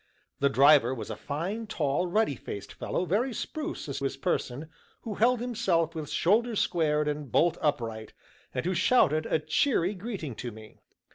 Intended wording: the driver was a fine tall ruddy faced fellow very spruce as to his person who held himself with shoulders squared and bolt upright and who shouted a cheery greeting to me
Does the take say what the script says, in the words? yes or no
no